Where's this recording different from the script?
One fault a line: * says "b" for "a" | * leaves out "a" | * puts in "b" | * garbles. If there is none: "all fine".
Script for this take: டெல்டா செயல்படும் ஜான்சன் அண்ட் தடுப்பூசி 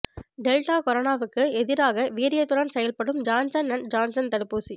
* puts in "கொரோனாவுக்கு எதிராக வீரியத்துடன்"
* puts in "ஜான்சன்"